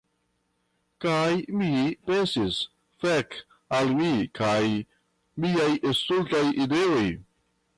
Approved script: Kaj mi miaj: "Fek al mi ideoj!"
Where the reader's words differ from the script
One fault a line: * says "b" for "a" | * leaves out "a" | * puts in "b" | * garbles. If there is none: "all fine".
* says "pensis" for "miaj"
* puts in "kaj miaj stultaj"